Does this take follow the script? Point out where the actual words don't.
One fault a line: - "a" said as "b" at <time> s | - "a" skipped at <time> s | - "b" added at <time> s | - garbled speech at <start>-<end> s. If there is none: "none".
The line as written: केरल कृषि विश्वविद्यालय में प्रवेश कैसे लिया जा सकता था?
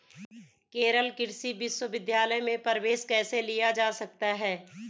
- "था" said as "है" at 4.3 s